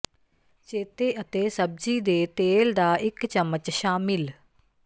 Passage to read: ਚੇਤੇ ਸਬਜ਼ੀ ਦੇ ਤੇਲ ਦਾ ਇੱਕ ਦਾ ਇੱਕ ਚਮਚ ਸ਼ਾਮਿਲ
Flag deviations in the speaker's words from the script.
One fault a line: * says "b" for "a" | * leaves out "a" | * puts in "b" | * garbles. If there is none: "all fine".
* puts in "ਅਤੇ"
* leaves out "ਦਾ ਇੱਕ"